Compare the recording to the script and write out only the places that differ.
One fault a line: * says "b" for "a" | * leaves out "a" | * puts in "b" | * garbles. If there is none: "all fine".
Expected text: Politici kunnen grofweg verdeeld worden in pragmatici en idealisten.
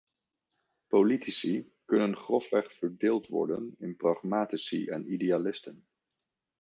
all fine